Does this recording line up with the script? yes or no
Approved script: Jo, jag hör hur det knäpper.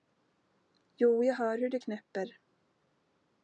yes